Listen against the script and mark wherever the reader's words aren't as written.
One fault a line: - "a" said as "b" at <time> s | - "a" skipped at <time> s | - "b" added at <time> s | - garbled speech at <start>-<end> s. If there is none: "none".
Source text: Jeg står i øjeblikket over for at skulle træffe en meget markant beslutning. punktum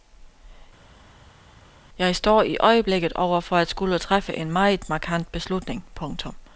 none